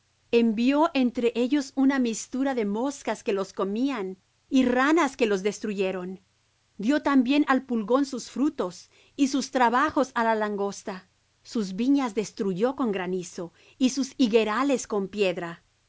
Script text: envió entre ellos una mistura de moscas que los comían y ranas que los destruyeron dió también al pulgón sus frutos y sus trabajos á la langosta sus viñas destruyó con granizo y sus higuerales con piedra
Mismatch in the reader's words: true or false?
false